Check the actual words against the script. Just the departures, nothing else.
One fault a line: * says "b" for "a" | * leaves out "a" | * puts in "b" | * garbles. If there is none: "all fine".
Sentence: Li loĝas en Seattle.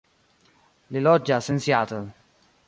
all fine